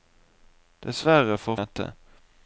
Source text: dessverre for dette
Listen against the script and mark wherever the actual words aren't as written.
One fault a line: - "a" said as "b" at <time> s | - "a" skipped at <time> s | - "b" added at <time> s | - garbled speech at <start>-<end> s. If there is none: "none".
none